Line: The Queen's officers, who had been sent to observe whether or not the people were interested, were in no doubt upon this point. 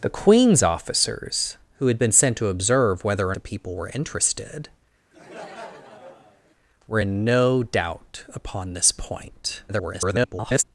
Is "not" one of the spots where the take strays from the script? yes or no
yes